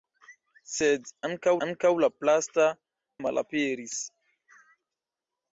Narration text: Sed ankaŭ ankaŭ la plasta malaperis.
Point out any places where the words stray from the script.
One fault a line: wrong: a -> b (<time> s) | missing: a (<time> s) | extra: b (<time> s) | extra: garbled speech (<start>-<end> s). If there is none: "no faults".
no faults